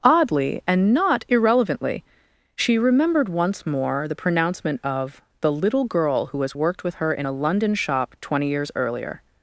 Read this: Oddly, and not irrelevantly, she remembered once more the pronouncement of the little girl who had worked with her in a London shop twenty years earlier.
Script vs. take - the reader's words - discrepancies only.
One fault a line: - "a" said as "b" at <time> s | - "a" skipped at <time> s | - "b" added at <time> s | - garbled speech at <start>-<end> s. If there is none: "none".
- "had" said as "has" at 6.4 s